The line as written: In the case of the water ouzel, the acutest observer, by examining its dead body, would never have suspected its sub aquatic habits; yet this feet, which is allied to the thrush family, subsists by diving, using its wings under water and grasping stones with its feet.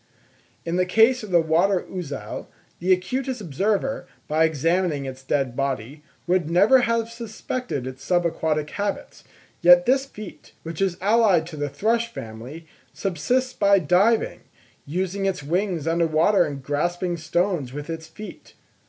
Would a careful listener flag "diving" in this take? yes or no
no